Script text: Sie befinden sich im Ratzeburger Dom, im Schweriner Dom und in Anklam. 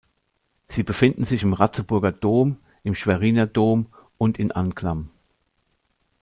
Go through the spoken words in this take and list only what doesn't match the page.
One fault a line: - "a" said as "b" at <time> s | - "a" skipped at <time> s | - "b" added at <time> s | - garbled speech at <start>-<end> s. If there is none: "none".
none